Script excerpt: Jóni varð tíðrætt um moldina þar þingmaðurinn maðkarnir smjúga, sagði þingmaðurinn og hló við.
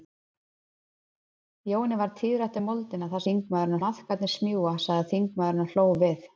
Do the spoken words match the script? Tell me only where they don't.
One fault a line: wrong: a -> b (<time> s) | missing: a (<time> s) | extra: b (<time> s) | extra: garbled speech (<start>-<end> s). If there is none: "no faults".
no faults